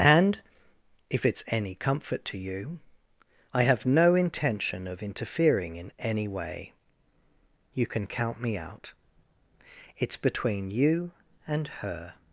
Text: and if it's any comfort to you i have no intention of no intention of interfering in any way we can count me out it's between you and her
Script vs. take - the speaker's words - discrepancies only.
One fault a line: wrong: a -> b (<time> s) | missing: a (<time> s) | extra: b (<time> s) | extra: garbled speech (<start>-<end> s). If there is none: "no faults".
missing: no intention of (5.0 s)
wrong: we -> you (7.7 s)